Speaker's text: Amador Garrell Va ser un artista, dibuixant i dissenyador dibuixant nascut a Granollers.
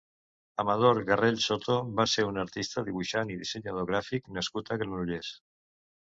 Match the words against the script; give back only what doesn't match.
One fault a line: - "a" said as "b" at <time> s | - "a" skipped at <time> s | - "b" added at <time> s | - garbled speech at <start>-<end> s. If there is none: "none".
- "Soto" added at 1.5 s
- "dibuixant" said as "gràfic" at 3.9 s